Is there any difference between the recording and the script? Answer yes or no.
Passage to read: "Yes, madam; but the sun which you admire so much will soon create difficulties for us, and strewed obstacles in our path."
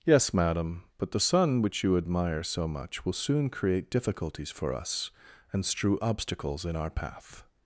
yes